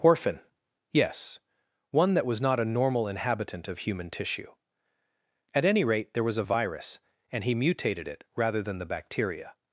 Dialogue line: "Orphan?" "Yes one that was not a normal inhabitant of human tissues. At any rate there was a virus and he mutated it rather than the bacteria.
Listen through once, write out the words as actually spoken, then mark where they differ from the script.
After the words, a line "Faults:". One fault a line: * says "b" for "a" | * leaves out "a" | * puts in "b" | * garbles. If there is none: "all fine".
"Orphan?" "Yes one that was not a normal inhabitant of human tissue. At any rate there was a virus and he mutated it rather than the bacteria.
Faults:
* says "tissue" for "tissues"